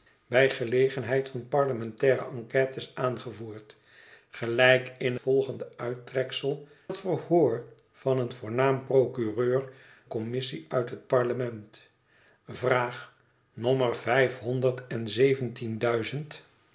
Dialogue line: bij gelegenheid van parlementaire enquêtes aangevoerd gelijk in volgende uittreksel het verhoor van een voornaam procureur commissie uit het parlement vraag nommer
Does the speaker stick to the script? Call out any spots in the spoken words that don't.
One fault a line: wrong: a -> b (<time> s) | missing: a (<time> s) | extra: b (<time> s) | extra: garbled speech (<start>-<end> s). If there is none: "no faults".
no faults